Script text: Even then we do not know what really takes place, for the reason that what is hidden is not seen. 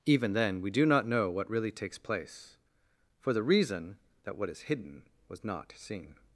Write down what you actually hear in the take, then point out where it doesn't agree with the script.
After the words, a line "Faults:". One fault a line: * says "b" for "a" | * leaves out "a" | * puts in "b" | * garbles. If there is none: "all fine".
Even then we do not know what really takes place, for the reason that what is hidden was not seen.
Faults:
* says "was" for "is"